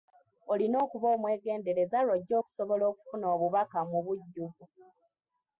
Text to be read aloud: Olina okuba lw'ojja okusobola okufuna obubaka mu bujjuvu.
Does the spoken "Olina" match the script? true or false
true